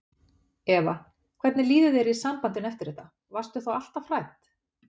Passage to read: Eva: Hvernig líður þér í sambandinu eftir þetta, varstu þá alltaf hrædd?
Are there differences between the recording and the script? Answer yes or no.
no